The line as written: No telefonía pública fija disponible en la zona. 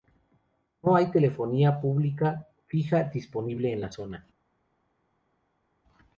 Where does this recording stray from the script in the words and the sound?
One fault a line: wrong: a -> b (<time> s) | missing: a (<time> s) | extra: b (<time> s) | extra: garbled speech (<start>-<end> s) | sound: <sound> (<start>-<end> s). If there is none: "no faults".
extra: hay (0.9 s)